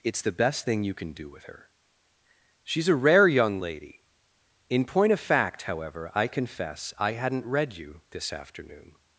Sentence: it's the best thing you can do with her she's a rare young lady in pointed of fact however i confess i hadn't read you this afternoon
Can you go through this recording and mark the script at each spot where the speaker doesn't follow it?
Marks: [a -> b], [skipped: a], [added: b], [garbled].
it's the best thing you can do with her she's a rare young lady in [pointed -> point] of fact however i confess i hadn't read you this afternoon